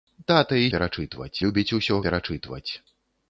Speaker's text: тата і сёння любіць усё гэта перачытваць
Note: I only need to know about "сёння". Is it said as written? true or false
false